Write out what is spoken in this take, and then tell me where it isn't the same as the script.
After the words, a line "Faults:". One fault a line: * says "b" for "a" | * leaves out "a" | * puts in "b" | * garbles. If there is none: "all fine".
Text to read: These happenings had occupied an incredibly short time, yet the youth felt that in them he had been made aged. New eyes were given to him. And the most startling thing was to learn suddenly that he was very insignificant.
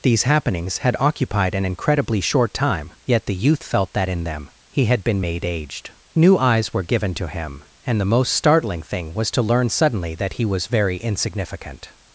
These happenings had occupied an incredibly short time, yet the youth felt that in them he had been made aged. New eyes were given to him. And the most startling thing was to learn suddenly that he was very insignificant.
Faults:
all fine